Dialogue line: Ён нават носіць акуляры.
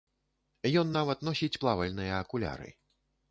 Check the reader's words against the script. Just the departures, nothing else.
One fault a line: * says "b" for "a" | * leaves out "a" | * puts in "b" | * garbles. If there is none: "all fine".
* puts in "плавальныя"